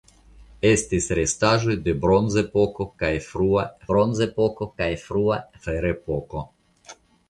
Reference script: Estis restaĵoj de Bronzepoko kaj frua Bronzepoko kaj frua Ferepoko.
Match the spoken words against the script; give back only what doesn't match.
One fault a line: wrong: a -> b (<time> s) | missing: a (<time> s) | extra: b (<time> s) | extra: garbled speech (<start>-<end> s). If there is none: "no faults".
no faults